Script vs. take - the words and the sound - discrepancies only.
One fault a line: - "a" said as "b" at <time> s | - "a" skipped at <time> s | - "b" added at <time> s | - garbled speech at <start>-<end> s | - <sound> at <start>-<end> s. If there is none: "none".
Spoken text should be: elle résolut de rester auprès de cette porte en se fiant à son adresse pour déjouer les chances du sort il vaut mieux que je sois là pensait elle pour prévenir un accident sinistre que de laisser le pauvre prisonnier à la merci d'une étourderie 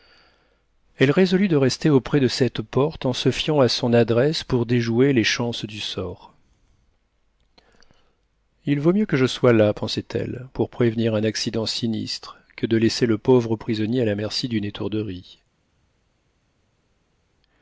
none